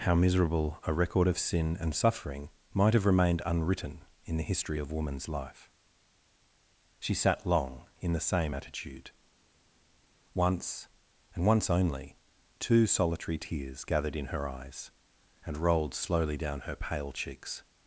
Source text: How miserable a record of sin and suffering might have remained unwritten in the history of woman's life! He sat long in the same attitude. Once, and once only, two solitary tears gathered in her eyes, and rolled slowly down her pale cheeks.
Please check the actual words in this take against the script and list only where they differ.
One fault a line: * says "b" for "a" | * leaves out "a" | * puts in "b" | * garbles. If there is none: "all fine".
* says "She" for "He"